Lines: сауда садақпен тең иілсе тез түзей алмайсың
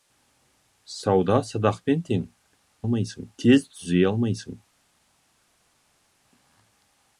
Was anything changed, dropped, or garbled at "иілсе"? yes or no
yes